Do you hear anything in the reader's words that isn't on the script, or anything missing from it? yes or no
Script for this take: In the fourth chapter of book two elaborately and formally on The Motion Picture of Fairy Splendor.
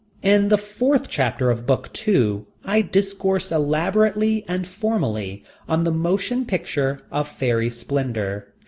yes